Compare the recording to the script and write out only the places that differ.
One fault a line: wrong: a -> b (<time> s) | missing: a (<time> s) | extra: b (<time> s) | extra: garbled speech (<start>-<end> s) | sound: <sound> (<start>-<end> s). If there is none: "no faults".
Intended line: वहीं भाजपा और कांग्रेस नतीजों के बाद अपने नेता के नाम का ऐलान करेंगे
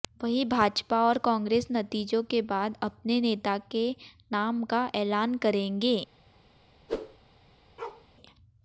sound: whoosh (6.9-7.2 s)
sound: bark (7.8-8.1 s)